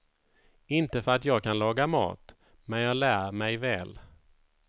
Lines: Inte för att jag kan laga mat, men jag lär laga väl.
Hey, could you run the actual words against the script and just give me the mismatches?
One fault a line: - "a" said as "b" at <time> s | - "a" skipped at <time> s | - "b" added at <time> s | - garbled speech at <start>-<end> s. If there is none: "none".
- "laga" said as "mig" at 3.3 s